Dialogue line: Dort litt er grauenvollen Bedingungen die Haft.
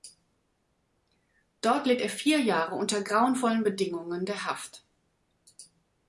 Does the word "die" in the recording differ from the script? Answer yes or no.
yes